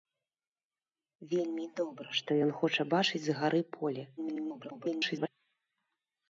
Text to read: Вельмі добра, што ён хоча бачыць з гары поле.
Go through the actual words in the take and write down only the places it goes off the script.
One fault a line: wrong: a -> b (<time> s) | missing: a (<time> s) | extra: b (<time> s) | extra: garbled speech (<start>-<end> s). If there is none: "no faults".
extra: garbled speech (4.2-5.3 s)